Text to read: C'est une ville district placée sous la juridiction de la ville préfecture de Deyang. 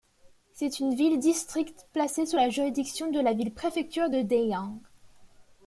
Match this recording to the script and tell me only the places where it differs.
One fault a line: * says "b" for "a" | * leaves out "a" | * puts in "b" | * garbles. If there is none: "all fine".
all fine